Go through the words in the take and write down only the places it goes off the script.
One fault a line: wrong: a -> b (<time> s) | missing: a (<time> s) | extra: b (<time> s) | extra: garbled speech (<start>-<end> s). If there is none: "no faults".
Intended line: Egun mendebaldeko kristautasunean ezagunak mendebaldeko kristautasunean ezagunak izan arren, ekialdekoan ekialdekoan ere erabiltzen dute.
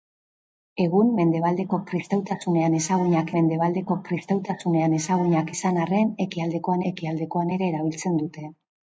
no faults